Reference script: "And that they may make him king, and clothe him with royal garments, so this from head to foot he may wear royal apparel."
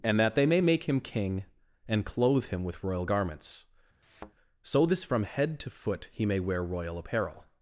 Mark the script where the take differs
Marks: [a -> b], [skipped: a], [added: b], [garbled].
"And that they may make him king, and clothe him with royal garments, so this from head to foot he may wear royal apparel."